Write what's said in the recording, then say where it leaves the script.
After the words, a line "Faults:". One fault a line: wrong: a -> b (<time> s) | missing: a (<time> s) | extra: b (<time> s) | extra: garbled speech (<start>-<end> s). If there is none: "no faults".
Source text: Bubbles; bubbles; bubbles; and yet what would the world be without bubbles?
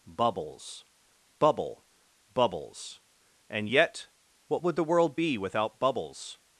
Bubbles; bubble; bubbles; and yet what would the world be without bubbles?
Faults:
wrong: bubbles -> bubble (1.4 s)